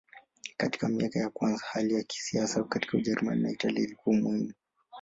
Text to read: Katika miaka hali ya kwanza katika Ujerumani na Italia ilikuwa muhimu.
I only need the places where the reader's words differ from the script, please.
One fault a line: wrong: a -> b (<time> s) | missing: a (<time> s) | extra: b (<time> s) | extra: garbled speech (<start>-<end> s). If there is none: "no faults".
extra: ya kwanza (1.2 s)
wrong: kwanza -> kisiasa (2.0 s)